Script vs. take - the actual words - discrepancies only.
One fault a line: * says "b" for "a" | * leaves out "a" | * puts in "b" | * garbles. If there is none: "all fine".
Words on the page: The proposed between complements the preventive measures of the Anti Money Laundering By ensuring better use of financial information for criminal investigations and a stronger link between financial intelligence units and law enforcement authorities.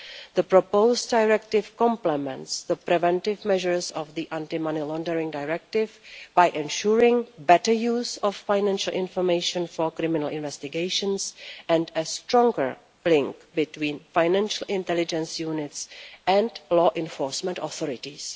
* says "directive" for "between"
* puts in "Directive"